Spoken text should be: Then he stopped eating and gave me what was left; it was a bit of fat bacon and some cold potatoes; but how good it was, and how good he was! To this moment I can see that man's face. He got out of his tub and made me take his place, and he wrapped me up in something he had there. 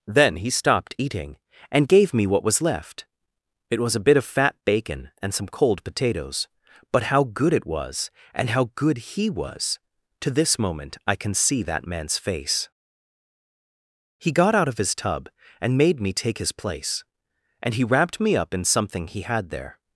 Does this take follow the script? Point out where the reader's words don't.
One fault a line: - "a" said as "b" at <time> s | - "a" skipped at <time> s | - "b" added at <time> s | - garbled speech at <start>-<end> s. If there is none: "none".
none